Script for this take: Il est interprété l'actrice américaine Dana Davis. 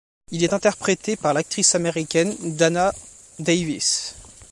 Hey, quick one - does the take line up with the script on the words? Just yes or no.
no